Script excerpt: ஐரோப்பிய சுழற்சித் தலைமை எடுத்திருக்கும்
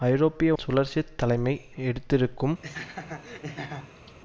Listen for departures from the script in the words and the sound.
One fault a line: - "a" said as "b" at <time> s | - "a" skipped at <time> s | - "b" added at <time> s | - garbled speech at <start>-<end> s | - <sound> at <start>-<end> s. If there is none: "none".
- laugh at 2.6-4.2 s